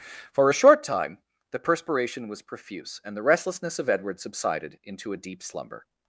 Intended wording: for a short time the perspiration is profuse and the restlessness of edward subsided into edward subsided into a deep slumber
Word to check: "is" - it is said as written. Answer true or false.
false